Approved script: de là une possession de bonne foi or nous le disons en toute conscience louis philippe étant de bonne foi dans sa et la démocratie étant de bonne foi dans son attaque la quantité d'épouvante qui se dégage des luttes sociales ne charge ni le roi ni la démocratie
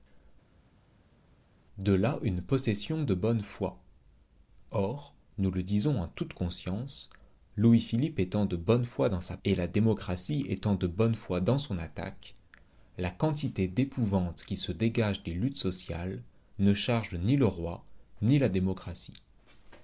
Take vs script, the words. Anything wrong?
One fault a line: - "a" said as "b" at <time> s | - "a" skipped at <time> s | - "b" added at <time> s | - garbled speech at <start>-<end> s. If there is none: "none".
none